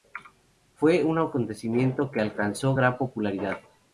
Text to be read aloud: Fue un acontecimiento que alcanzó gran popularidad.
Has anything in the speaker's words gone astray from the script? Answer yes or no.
no